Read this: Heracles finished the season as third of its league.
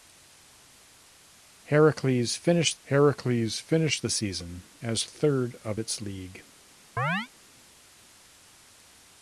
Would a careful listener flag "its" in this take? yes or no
no